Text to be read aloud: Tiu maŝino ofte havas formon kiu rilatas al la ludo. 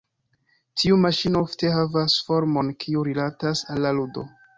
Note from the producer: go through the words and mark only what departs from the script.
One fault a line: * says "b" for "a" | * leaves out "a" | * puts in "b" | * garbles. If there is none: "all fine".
all fine